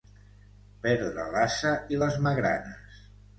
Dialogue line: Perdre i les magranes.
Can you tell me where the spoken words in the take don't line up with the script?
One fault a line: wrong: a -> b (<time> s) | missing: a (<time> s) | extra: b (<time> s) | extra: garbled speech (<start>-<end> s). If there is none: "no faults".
extra: l'ase (1.4 s)